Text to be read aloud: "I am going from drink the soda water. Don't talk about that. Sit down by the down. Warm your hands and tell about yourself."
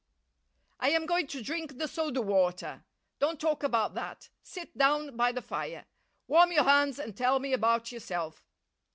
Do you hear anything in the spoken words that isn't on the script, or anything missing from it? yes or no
yes